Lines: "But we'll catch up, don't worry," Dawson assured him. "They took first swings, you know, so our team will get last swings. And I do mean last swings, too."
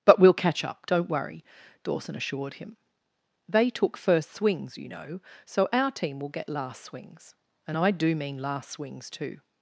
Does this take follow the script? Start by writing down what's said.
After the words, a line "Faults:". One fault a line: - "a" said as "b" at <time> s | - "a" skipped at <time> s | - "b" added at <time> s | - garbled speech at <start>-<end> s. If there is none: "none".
"But we'll catch up, don't worry," Dawson assured him. "They took first swings, you know, so our team will get last swings. And I do mean last swings, too."
Faults:
none